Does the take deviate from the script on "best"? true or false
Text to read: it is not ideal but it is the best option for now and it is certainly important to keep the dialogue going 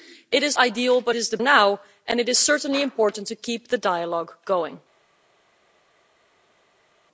true